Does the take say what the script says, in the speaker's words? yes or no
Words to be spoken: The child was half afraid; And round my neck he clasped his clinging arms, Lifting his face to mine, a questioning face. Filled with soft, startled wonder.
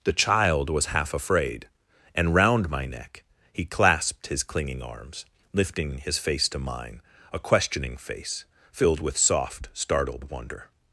yes